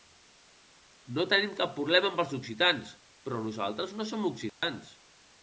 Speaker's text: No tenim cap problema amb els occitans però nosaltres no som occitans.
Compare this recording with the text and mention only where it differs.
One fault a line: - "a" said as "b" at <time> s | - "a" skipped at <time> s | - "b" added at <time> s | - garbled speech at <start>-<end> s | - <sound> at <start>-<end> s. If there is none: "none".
- dropout at 4.5-4.6 s